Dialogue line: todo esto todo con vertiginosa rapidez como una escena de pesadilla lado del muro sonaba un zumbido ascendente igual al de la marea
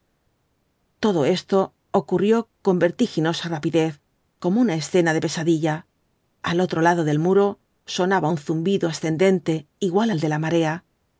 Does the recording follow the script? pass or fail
fail